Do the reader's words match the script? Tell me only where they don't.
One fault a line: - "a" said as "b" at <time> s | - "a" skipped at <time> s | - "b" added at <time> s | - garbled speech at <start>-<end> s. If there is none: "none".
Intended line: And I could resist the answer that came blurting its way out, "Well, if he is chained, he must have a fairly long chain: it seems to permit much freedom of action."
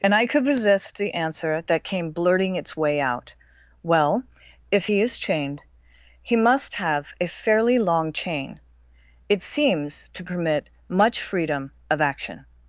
none